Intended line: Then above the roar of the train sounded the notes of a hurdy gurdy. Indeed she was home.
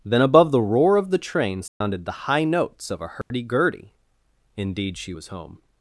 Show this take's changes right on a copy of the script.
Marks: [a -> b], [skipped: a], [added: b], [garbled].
Then above the roar of the train sounded the [added: high] notes of a hurdy gurdy. Indeed she was home.